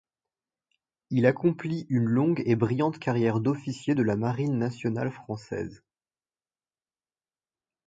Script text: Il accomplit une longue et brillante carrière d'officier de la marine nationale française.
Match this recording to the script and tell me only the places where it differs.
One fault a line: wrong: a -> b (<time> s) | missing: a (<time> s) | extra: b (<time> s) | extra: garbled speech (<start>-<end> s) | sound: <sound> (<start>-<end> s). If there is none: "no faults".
no faults